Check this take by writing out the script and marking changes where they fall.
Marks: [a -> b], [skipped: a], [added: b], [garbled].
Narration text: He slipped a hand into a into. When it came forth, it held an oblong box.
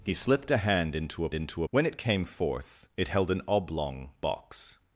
He slipped a hand into a into. When it came forth, it held an oblong box.